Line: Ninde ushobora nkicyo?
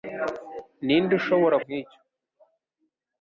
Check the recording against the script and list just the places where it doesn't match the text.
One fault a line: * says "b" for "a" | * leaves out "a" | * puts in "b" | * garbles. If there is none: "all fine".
all fine